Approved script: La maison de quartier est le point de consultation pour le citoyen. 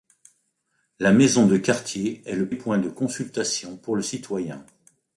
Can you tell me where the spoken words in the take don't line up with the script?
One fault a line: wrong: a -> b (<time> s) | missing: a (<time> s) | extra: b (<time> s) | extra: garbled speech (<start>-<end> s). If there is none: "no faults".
no faults